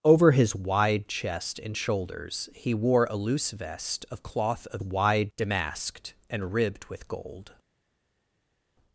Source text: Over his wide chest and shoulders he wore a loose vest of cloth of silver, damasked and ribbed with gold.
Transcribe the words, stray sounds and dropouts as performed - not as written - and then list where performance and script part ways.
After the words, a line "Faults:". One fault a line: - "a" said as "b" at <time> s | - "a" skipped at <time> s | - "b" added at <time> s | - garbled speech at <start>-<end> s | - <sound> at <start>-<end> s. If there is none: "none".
Over his wide chest and shoulders he wore a loose vest of cloth of wide, damasked and ribbed with gold.
Faults:
- "silver" said as "wide" at 4.8 s